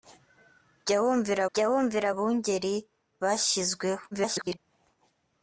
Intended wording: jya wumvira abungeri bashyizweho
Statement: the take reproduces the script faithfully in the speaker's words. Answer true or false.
false